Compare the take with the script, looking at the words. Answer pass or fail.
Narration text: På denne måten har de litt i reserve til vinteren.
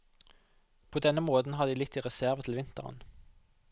pass